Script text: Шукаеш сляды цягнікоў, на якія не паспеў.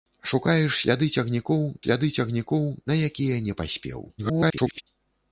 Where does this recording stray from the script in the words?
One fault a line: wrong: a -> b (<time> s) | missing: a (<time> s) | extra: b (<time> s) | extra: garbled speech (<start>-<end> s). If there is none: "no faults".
extra: сляды цягнікоў (1.8 s)
extra: garbled speech (4.2-4.8 s)